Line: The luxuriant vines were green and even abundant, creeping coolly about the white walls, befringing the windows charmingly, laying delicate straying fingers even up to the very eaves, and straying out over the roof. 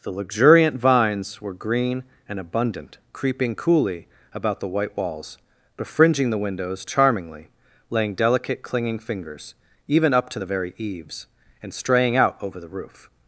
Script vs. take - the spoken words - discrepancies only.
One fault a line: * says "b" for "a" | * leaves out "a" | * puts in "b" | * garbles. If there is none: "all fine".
* leaves out "even"
* says "clinging" for "straying"